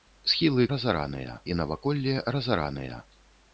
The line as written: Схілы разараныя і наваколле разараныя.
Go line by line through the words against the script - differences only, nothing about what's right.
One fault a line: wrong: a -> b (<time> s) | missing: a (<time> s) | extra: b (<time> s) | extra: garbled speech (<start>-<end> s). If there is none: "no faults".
no faults